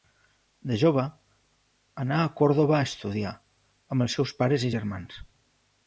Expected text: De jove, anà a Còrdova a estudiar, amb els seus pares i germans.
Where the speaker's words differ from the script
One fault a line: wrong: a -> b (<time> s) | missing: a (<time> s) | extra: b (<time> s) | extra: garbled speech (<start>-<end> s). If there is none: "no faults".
no faults